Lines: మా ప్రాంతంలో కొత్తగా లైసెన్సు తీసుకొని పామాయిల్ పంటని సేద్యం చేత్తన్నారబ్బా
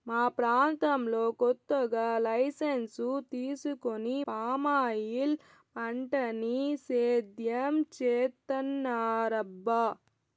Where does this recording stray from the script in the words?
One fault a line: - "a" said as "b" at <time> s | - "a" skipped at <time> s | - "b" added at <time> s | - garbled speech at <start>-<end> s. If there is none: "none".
none